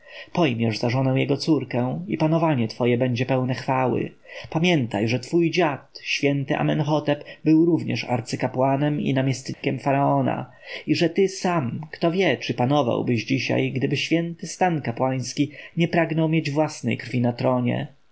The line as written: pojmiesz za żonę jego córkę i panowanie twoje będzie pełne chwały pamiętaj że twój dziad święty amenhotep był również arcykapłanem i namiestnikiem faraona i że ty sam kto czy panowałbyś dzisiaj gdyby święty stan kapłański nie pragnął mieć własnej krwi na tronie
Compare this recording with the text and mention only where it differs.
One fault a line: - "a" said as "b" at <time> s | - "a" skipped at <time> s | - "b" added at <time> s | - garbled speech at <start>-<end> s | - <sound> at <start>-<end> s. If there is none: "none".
- dropout at 9.5-9.6 s
- "wie" added at 12.1 s